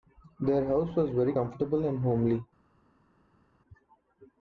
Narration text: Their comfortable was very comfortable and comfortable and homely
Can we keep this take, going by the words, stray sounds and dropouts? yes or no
no